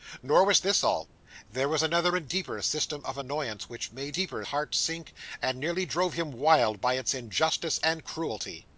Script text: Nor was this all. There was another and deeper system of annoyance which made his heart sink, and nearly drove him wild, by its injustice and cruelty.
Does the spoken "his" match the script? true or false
false